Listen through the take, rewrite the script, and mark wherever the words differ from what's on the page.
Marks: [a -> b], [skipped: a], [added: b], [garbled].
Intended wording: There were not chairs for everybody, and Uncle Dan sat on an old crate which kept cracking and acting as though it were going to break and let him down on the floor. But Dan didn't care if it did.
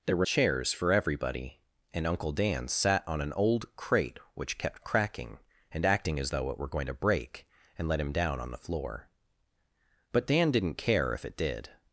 There were [skipped: not] chairs for everybody, and Uncle Dan sat on an old crate which kept cracking and acting as though it were going to break and let him down on the floor. But Dan didn't care if it did.